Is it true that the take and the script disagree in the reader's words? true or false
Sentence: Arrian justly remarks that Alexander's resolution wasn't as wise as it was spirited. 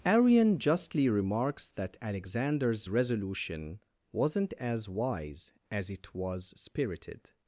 false